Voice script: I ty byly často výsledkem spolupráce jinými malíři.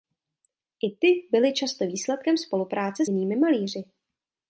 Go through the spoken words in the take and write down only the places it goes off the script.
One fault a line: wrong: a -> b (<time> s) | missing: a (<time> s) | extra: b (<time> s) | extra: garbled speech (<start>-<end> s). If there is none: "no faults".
no faults